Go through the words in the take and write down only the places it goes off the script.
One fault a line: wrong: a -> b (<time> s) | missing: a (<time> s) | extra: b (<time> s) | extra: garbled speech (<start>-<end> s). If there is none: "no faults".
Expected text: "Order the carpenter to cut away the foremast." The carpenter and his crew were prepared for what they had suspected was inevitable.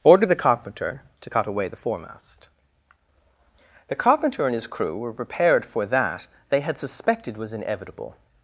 wrong: what -> that (5.9 s)